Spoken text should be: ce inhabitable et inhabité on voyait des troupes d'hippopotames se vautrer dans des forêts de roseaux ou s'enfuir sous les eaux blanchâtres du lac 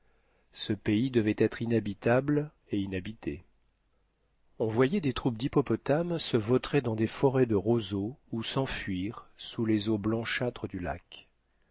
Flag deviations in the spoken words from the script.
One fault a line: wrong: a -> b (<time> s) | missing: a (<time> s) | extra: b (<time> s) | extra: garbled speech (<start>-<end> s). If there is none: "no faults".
extra: pays devait être (0.7 s)